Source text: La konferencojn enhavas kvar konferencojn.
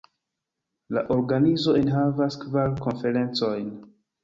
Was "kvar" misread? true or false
false